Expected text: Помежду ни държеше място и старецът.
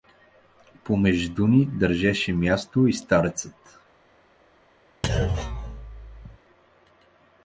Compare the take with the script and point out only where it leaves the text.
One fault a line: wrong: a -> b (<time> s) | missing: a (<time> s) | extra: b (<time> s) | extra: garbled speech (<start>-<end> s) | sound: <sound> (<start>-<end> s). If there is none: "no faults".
sound: thud (5.0-6.4 s)